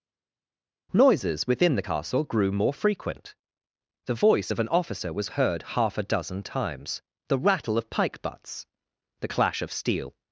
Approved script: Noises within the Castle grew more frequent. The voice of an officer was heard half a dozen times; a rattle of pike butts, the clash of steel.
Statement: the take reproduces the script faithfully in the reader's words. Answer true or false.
false